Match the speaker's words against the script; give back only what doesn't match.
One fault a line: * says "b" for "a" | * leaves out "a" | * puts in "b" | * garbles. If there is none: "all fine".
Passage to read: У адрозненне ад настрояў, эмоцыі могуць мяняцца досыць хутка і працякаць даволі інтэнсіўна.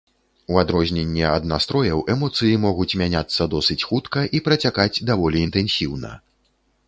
all fine